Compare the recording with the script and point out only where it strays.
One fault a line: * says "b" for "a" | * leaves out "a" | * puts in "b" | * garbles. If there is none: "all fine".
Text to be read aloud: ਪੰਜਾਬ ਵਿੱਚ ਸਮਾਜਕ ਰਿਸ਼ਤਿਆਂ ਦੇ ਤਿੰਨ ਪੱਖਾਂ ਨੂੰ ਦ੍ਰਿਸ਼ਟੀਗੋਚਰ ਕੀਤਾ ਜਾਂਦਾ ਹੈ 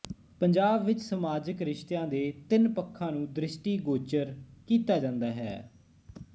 all fine